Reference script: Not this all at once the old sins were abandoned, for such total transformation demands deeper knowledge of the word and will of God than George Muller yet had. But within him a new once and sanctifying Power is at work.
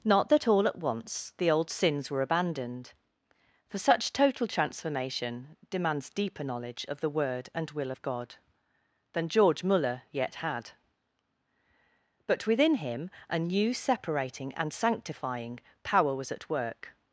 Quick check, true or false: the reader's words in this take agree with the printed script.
false